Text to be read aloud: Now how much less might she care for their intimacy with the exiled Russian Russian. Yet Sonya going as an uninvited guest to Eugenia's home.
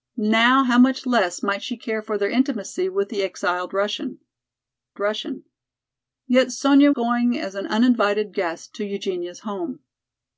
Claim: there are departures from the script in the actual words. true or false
false